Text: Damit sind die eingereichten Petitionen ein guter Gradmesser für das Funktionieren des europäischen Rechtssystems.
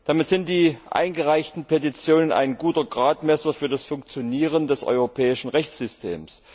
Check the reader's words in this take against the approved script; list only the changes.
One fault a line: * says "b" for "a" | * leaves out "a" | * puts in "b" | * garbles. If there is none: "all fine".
all fine